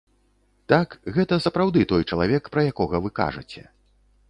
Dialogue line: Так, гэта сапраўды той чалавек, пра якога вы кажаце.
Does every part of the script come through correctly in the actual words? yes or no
yes